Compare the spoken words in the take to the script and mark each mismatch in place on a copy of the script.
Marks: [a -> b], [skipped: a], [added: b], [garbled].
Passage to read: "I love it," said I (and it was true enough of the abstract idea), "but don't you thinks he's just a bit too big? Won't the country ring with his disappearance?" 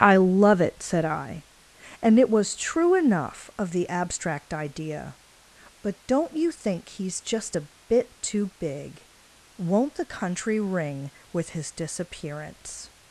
"I love it," said I (and it was true enough of the abstract idea), "but don't you [thinks -> think] he's just a bit too big? Won't the country ring with his disappearance?"